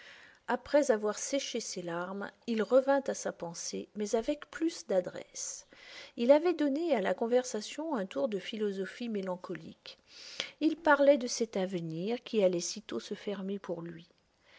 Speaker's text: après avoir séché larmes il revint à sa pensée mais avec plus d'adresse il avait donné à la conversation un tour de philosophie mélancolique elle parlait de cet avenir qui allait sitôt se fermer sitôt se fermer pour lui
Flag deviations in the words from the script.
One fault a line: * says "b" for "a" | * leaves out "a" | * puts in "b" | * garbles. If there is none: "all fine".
* puts in "ses"
* says "il" for "elle"
* leaves out "sitôt se fermer"